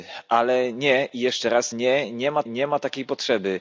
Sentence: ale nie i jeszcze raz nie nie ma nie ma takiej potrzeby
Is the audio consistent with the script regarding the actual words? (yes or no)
yes